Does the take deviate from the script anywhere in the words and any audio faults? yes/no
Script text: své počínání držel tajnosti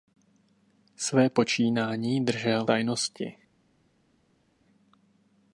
no